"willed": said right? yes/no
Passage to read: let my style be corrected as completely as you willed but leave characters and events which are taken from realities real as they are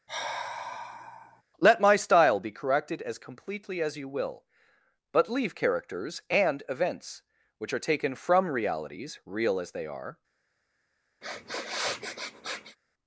no